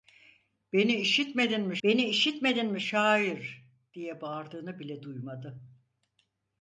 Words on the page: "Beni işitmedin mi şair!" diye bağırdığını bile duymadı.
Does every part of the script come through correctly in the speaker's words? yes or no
no